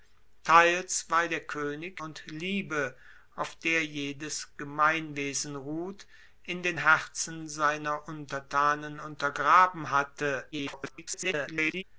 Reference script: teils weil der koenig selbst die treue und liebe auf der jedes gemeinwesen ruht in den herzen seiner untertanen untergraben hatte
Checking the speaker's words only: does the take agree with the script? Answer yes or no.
no